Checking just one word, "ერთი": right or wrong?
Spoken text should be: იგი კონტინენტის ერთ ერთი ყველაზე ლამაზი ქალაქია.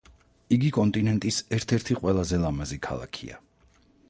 right